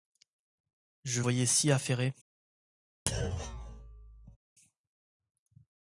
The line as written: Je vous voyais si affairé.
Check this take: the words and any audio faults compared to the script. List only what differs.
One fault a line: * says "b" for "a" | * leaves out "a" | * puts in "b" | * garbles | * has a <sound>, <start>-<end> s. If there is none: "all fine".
* leaves out "vous"
* has a thud, 3.1-4.4 s